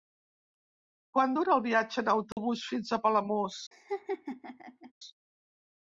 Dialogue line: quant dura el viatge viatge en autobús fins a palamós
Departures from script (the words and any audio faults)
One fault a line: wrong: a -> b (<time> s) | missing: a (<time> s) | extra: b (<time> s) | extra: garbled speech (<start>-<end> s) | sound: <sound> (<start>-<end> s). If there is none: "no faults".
missing: viatge (2.0 s)
sound: dropout (2.3-2.4 s)
sound: laugh (3.7-4.9 s)